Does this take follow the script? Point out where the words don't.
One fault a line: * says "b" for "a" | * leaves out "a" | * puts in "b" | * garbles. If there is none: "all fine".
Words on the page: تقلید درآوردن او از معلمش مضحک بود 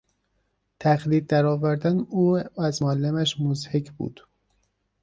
all fine